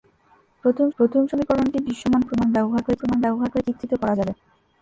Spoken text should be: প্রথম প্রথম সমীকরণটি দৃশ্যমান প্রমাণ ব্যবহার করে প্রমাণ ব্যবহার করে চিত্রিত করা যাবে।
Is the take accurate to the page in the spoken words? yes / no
yes